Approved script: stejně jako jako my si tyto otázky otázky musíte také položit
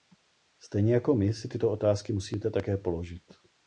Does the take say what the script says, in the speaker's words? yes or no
no